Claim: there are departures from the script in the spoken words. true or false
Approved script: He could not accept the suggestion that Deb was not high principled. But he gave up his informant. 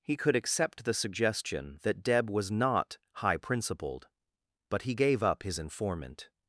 true